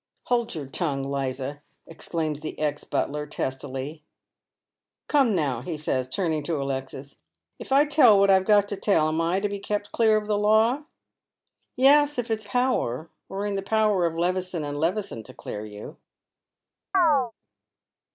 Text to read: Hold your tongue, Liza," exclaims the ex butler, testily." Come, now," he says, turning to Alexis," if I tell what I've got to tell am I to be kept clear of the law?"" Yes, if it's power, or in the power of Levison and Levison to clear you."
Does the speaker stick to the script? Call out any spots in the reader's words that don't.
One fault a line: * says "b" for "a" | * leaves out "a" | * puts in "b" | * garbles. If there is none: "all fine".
all fine